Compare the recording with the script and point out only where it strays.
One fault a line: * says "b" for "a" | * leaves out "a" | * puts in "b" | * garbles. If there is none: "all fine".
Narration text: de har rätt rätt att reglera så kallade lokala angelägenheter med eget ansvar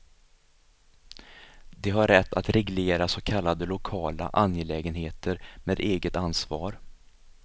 * leaves out "rätt"